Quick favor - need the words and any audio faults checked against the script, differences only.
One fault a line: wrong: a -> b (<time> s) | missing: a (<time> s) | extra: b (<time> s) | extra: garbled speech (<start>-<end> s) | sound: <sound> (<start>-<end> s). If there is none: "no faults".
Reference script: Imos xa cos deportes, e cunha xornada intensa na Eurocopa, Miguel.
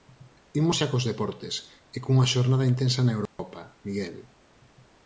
sound: dropout (3.3-3.4 s)